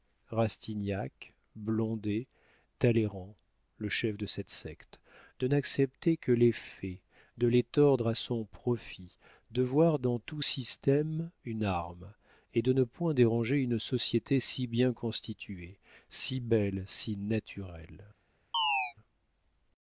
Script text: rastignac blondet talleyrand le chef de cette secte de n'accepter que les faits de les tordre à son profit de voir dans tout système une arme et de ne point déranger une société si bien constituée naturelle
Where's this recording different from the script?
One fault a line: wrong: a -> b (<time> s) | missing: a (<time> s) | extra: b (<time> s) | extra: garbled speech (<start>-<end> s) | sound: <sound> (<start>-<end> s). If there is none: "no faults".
extra: si belle si (16.1 s)
sound: chirp (18.5-18.9 s)